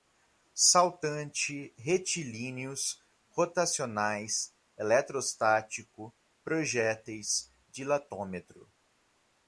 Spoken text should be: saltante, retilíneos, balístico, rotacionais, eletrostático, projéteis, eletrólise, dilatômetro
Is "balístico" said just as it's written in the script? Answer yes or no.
no